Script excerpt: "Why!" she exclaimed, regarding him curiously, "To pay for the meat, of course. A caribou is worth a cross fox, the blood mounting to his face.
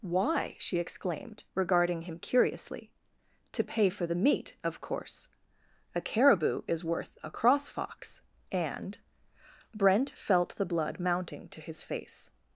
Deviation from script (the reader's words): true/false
true